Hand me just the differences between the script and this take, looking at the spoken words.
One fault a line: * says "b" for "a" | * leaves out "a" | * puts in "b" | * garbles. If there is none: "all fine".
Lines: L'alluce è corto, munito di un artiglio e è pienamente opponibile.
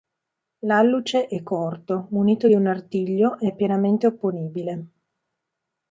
all fine